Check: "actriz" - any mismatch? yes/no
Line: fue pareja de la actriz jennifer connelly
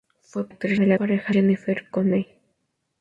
yes